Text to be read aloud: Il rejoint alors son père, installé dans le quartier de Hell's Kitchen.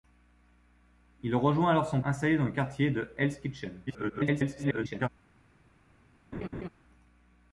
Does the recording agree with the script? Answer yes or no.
no